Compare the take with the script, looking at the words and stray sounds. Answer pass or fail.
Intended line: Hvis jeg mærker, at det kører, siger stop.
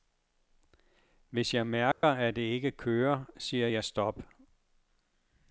fail